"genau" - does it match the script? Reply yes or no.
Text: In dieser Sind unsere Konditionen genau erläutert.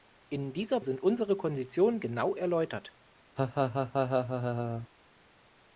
yes